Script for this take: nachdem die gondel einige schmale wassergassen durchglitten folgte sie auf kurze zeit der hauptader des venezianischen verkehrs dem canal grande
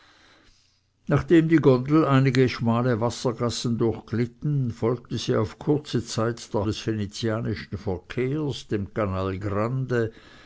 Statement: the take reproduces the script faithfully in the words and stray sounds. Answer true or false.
false